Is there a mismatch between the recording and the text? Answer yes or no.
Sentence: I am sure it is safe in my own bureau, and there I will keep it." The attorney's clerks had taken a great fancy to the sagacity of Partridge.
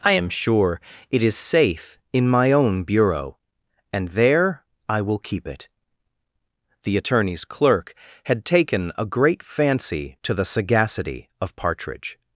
yes